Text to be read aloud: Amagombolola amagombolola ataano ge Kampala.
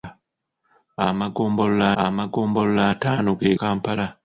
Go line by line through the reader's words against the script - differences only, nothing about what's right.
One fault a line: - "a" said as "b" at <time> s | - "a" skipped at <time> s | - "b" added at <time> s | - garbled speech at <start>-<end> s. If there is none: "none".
none